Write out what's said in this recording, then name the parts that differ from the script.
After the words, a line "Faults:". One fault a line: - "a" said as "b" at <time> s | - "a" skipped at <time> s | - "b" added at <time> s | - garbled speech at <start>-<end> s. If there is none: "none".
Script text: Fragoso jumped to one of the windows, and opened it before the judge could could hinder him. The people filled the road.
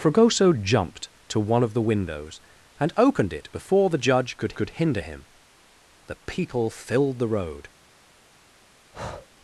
Fragoso jumped to one of the windows, and opened it before the judge could could hinder him. The people filled the road.
Faults:
none